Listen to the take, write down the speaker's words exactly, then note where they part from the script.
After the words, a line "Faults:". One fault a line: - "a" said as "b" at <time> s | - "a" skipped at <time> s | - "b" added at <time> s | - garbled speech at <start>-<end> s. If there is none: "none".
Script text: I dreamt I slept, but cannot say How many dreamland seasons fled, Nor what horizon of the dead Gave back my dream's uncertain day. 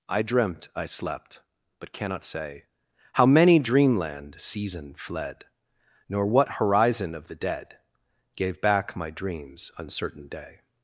I dreamt I slept, but cannot say How many dreamland season fled, Nor what horizon of the dead Gave back my dream's uncertain day.
Faults:
- "seasons" said as "season" at 4.4 s